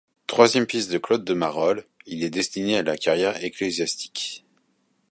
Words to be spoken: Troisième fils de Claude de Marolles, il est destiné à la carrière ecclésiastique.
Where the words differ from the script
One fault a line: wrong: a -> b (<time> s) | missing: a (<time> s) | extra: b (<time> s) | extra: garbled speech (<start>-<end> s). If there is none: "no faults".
no faults